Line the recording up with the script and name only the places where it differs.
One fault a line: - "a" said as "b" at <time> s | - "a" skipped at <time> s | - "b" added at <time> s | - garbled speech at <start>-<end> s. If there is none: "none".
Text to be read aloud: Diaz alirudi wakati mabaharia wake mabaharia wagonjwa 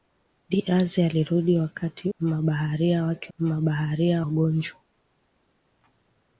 none